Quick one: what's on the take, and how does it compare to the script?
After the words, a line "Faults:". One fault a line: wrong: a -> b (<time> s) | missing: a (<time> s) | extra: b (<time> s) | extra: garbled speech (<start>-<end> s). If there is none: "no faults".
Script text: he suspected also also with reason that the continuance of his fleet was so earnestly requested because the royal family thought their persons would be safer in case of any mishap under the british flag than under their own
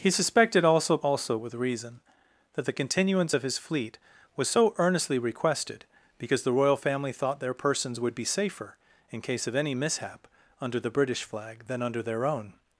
he suspected also also with reason that the continuance of his fleet was so earnestly requested because the royal family thought their persons would be safer in case of any mishap under the british flag than under their own
Faults:
no faults